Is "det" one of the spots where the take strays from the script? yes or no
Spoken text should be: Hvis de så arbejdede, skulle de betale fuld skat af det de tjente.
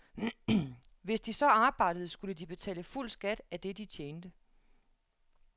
no